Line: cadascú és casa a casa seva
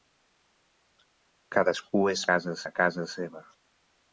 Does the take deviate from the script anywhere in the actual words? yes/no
no